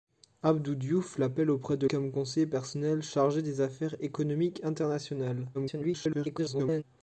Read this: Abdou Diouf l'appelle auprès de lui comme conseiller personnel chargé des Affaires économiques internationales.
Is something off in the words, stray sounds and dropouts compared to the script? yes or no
yes